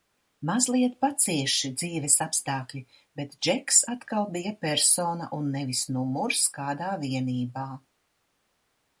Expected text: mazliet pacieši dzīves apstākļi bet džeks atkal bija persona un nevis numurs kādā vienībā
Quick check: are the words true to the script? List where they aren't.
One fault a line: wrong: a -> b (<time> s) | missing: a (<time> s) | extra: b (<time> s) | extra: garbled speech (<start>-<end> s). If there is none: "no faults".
no faults